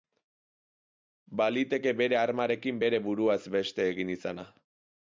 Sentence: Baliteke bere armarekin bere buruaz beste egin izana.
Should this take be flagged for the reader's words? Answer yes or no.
no